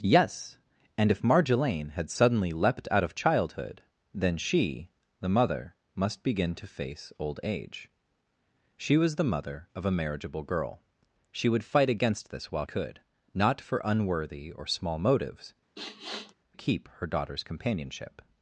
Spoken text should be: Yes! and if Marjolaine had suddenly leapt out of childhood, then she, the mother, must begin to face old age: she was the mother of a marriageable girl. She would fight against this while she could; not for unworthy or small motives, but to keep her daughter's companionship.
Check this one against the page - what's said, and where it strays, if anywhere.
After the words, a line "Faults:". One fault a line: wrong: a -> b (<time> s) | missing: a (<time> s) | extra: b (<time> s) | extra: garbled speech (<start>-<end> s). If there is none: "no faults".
Yes! and if Marjolaine had suddenly leapt out of childhood, then she, the mother, must begin to face old age: she was the mother of a marriageable girl. She would fight against this while could; not for unworthy or small motives, keep her daughter's companionship.
Faults:
missing: she (12.6 s)
missing: but to (15.5 s)